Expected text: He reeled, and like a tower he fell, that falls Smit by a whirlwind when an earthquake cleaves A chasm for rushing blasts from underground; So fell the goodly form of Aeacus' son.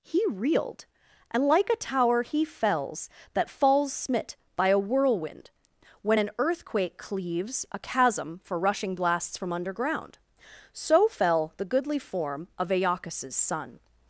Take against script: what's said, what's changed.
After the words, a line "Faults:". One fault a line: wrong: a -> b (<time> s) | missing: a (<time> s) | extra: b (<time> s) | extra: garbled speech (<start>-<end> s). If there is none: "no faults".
He reeled, and like a tower he fells, that falls Smit by a whirlwind when an earthquake cleaves A chasm for rushing blasts from underground; So fell the goodly form of Aeacus' son.
Faults:
wrong: fell -> fells (2.4 s)